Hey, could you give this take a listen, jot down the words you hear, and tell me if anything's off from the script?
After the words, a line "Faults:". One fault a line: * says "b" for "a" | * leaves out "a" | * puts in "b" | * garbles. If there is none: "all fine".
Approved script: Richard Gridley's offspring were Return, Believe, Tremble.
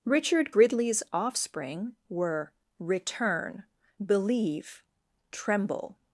Richard Gridley's offspring were Return, Believe, Tremble.
Faults:
all fine